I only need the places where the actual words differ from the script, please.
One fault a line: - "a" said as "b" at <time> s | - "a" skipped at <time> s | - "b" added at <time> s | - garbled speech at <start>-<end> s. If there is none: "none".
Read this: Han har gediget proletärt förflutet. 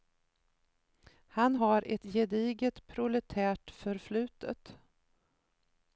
- "ett" added at 1.9 s